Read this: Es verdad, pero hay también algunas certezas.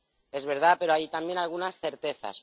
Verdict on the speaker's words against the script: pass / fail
pass